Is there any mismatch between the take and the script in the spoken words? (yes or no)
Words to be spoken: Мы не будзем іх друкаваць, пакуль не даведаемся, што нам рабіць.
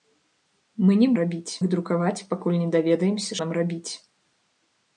yes